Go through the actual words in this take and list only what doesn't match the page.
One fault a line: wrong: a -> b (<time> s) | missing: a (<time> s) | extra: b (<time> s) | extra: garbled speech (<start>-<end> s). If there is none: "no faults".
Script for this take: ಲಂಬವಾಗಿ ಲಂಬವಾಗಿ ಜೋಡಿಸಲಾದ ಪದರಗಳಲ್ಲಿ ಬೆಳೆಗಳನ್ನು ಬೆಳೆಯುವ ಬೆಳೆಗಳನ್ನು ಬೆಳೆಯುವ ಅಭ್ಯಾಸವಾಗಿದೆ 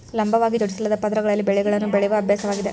missing: ಲಂಬವಾಗಿ (0.6 s)
missing: ಬೆಳೆಗಳನ್ನು ಬೆಳೆಯುವ (2.2 s)